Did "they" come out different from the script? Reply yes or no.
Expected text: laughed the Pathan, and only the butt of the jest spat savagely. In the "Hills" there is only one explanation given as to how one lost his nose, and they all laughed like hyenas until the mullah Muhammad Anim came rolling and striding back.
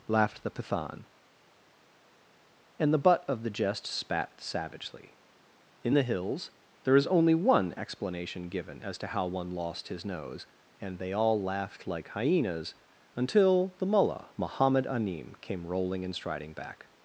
no